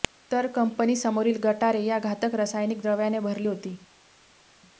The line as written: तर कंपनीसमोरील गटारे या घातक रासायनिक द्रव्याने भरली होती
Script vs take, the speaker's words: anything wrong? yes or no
no